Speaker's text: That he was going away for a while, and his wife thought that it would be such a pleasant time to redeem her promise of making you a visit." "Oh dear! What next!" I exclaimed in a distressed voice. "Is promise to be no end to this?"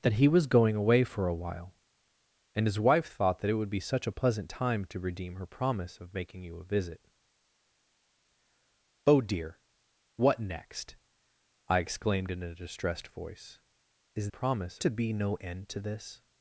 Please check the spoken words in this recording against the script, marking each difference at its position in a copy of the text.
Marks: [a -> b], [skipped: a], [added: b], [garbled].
That he was going away for a while, and his wife thought that it would be such a pleasant time to redeem her promise of making you a visit." "Oh dear! What next!" I exclaimed in a distressed voice. "Is promise to be no end to this?"